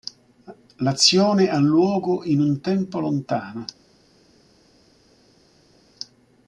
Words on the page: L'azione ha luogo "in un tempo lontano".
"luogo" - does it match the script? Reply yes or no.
yes